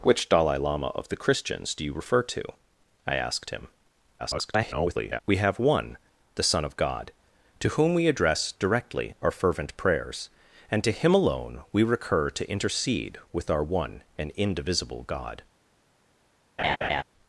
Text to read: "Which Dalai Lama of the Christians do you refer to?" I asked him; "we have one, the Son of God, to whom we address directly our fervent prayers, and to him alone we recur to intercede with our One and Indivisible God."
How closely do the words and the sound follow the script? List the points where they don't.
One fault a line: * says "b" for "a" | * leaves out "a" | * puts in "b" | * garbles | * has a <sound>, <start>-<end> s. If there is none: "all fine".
* garbles
* has a laugh, 16.6-17.0 s